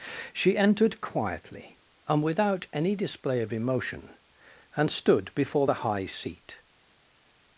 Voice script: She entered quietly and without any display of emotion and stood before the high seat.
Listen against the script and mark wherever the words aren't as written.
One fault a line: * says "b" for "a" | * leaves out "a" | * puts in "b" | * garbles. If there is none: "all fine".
all fine